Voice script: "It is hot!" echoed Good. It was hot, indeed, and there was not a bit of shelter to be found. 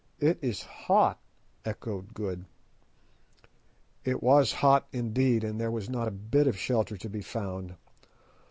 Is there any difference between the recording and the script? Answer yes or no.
no